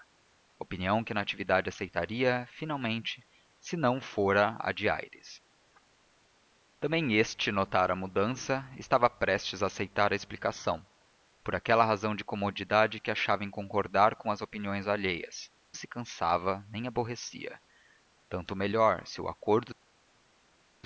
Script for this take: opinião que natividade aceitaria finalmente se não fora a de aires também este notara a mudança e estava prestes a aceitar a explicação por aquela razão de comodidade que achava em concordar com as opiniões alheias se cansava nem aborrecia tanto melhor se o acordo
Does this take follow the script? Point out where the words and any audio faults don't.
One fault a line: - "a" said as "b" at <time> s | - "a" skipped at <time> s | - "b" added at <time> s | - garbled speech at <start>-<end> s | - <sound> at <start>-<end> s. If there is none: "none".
none